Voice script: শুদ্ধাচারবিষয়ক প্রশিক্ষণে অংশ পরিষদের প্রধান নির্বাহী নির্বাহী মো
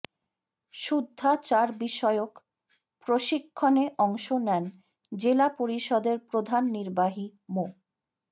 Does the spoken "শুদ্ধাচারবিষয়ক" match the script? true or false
true